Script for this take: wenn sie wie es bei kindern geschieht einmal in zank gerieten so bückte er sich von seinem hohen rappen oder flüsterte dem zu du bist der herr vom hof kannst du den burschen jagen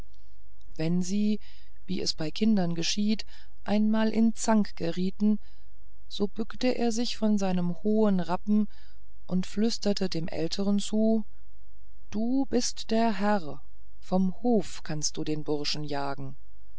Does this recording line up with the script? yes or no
no